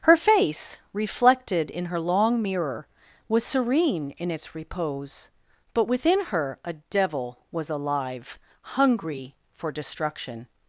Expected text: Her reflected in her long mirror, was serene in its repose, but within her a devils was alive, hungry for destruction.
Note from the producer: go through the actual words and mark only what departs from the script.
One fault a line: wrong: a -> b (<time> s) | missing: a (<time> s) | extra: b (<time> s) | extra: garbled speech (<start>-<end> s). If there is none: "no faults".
extra: face (0.1 s)
wrong: devils -> devil (6.7 s)